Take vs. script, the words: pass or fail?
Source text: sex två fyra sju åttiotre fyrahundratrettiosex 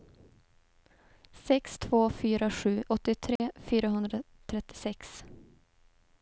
pass